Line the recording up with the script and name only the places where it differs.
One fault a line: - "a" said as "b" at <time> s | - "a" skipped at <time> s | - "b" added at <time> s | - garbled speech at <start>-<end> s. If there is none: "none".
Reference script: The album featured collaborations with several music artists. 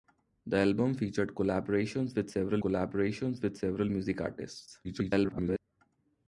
- "collaborations with several" added at 2.6 s
- garbled speech at 4.8-5.6 s